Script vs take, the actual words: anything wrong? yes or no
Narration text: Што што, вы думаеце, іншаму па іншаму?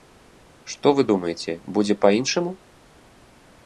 yes